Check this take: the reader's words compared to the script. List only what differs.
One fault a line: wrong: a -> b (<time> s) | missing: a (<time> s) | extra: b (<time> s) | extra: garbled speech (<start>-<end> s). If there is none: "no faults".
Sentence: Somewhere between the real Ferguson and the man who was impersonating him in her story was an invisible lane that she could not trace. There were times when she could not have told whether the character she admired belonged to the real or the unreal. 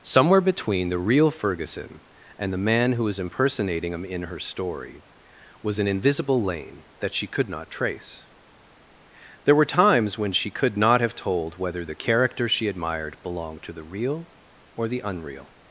no faults